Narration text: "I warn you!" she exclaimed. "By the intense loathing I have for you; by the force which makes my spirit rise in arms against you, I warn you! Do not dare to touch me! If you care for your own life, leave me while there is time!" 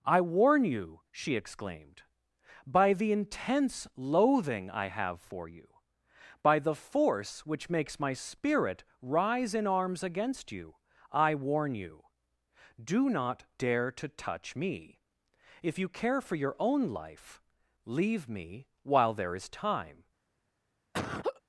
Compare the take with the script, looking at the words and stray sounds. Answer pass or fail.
fail